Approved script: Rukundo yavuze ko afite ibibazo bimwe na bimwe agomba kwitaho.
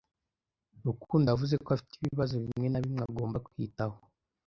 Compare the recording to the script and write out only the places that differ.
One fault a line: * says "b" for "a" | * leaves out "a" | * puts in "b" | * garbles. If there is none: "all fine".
all fine